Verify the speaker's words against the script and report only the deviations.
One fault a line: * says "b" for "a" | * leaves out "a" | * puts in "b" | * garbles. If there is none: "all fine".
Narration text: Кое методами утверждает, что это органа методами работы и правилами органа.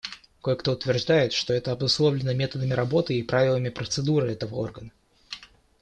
* says "кто" for "методами"
* says "обусловлено" for "органа"
* puts in "процедуры этого"